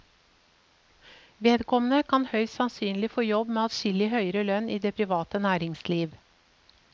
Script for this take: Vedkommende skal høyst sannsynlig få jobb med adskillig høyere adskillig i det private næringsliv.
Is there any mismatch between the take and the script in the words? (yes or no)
yes